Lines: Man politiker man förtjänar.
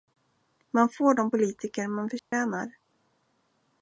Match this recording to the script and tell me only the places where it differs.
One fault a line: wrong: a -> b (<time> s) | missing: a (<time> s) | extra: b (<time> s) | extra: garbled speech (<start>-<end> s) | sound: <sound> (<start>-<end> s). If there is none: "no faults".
extra: får de (0.9 s)
sound: dropout (2.2-2.3 s)